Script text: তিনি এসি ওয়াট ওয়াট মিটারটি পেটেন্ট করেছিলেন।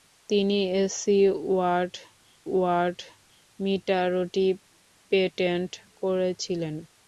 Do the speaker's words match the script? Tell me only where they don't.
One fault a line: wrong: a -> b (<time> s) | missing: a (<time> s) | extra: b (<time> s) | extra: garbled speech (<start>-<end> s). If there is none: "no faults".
no faults